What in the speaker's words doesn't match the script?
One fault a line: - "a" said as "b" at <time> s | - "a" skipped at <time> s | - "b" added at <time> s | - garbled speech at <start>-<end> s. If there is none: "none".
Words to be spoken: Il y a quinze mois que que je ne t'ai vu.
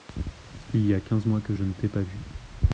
- "que" skipped at 1.5 s
- "pas" added at 1.9 s